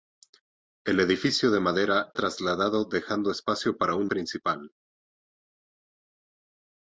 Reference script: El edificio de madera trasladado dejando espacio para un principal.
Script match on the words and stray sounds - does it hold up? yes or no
yes